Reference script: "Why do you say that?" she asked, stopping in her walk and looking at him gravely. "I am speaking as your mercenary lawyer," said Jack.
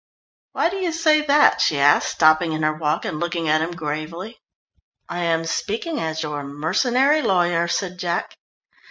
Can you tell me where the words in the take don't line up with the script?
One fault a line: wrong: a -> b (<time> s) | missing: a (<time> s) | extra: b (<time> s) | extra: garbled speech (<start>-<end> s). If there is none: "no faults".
no faults